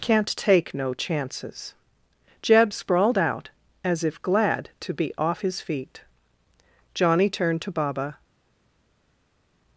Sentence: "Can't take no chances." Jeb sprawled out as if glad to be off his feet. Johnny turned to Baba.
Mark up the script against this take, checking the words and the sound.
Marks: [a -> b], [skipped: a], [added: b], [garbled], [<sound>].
"Can't take no chances." Jeb sprawled out as if glad to be off his feet. Johnny turned to Baba.